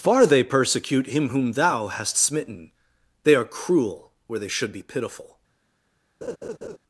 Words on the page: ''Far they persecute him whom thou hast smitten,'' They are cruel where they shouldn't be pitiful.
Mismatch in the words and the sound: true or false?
true